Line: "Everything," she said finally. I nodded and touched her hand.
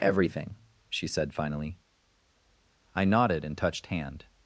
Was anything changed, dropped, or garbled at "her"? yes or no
yes